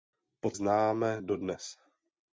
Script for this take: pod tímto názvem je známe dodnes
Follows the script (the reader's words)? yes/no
no